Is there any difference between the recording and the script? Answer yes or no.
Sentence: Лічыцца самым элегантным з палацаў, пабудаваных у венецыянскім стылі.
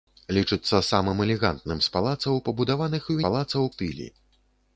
yes